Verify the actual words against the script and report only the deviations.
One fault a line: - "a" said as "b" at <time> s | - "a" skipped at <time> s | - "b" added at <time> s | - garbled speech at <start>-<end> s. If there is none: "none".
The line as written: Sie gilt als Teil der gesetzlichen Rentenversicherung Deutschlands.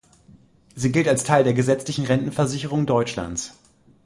none